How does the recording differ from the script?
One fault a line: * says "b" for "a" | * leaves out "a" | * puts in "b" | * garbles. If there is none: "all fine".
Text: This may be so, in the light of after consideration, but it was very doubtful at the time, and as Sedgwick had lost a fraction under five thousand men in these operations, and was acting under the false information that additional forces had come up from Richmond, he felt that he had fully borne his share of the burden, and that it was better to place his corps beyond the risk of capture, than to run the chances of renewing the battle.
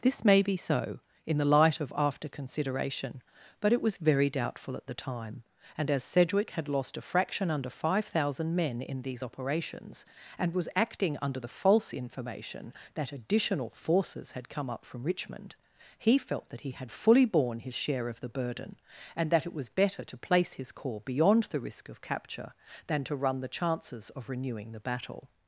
all fine